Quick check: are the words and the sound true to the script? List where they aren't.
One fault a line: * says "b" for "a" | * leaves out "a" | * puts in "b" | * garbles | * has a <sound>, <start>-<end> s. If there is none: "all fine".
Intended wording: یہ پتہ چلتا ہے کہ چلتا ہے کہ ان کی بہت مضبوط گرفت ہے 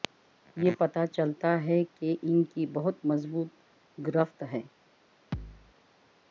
* leaves out "چلتا ہے کہ"
* has a thud, 5.3-5.8 s